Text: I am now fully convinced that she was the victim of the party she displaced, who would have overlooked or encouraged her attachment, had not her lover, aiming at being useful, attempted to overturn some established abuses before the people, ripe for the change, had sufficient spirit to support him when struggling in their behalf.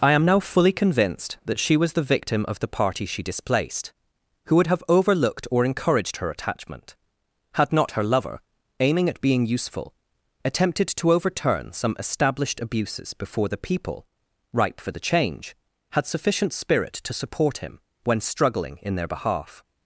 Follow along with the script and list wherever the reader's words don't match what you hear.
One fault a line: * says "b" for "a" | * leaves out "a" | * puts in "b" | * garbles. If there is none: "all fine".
all fine